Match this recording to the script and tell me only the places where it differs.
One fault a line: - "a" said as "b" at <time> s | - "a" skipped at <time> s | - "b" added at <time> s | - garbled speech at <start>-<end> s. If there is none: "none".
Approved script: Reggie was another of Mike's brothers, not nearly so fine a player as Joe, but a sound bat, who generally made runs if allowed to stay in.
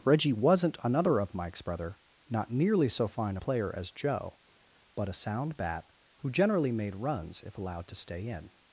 - "was" said as "wasn't" at 0.3 s
- "brothers" said as "brother" at 1.6 s